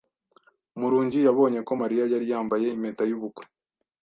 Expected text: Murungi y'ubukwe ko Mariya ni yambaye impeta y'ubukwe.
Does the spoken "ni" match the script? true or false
false